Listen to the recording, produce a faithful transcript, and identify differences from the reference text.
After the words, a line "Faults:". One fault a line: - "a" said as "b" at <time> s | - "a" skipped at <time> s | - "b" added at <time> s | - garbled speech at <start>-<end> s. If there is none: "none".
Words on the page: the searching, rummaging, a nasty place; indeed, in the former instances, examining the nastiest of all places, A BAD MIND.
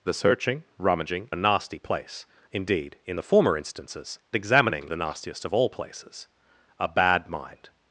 the searching, rummaging, a nasty place; indeed, in the former instances, examining the nastiest of all places, A BAD MIND.
Faults:
none